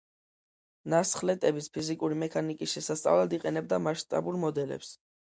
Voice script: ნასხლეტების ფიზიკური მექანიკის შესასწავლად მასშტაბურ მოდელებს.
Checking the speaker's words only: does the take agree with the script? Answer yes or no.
no